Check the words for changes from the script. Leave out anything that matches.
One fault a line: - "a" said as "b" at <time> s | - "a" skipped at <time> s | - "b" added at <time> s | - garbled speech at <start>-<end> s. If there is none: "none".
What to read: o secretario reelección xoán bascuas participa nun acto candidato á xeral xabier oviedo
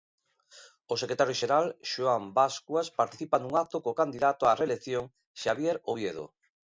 - "reelección" said as "xeral" at 1.4 s
- "co" added at 3.8 s
- "xeral" said as "reelección" at 4.6 s